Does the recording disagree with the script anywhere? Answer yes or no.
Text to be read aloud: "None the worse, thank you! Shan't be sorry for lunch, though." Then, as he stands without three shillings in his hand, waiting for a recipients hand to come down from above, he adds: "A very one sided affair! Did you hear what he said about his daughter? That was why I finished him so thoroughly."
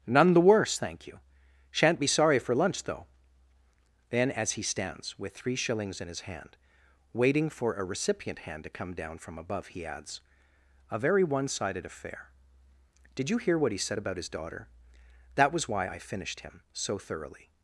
yes